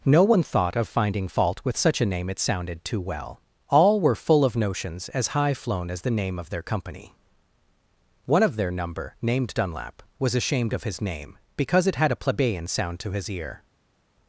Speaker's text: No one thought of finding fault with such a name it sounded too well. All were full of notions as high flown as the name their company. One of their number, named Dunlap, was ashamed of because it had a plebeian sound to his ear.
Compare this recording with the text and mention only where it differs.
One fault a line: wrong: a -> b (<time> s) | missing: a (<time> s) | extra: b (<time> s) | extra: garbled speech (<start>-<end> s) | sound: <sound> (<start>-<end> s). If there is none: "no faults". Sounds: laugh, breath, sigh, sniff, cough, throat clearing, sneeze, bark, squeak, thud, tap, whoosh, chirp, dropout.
extra: of (6.4 s)
extra: his name (10.8 s)